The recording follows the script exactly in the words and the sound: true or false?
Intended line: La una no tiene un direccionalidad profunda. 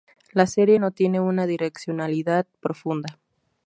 false